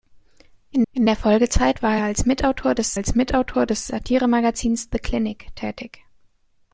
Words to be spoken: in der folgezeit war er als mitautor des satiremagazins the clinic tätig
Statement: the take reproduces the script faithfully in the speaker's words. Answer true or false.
false